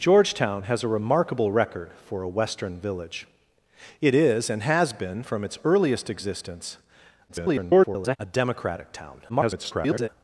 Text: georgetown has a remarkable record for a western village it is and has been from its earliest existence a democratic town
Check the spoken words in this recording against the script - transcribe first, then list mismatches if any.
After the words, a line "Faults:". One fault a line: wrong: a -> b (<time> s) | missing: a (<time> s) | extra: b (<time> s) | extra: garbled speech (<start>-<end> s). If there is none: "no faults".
georgetown has a remarkable record for a western village it is and has been from its earliest existence [garbled] a democratic town [garbled]
Faults:
extra: garbled speech (7.3-8.2 s)
extra: garbled speech (9.3-10.1 s)